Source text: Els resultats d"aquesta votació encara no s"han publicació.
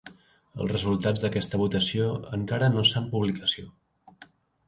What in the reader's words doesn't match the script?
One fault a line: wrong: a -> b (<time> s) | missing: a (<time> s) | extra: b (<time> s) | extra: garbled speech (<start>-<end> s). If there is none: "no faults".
no faults